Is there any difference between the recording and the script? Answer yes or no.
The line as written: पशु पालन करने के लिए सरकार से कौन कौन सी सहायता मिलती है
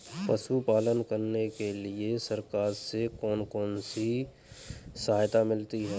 no